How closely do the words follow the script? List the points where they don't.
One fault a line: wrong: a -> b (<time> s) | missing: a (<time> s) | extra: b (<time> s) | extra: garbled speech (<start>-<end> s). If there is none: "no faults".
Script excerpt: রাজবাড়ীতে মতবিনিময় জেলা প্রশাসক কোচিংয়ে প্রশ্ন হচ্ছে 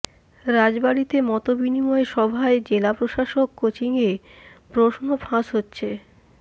extra: সভায় (2.1 s)
extra: ফাঁস (5.2 s)